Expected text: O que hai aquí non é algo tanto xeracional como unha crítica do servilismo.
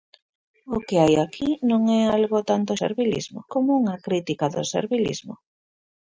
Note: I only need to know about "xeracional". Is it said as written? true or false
false